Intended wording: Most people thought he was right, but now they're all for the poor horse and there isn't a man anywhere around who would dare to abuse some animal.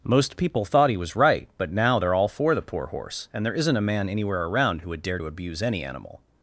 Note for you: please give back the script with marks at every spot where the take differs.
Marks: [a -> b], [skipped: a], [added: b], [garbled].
Most people thought he was right, but now they're all for the poor horse and there isn't a man anywhere around who would dare to abuse [some -> any] animal.